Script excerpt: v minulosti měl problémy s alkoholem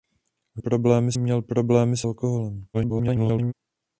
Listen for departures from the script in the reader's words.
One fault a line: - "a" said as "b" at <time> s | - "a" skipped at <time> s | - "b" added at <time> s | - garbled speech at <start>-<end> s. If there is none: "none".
- "minulosti" said as "problémy" at 0.6 s
- garbled speech at 2.7-3.5 s